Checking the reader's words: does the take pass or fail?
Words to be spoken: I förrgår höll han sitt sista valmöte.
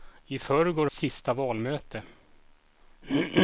fail